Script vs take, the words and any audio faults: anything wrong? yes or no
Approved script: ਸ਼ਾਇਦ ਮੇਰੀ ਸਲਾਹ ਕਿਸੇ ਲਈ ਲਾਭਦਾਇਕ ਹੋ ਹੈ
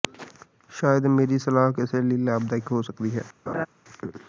yes